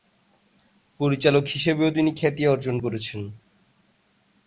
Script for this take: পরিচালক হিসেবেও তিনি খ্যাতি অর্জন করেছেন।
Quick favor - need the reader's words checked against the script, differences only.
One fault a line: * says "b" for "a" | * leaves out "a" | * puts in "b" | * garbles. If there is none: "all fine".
all fine